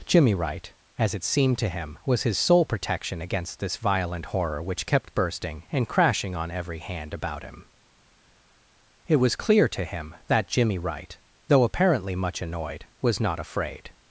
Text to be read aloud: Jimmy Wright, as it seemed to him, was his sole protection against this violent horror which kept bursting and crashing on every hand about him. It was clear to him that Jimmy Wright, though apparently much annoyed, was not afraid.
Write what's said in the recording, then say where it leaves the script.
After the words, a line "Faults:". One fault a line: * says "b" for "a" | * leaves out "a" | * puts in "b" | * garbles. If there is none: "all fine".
Jimmy Wright, as it seemed to him, was his sole protection against this violent horror which kept bursting and crashing on every hand about him. It was clear to him that Jimmy Wright, though apparently much annoyed, was not afraid.
Faults:
all fine